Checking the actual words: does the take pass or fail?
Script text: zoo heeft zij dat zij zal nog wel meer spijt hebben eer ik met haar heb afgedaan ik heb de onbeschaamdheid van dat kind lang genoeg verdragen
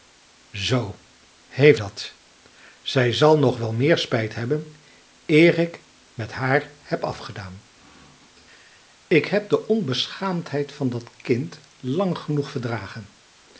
fail